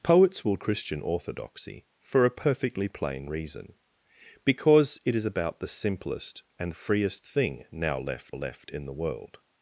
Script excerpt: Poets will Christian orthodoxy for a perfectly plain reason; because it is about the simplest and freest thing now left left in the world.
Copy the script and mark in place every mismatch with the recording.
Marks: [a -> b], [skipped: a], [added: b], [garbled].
Poets will Christian orthodoxy for a perfectly plain reason; because it is about the simplest and freest thing now left left in the world.